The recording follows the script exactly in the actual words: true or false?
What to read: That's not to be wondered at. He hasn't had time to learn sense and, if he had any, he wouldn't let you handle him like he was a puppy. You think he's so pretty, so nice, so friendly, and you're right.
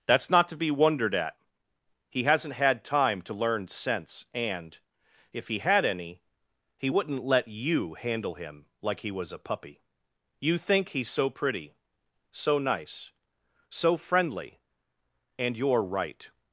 true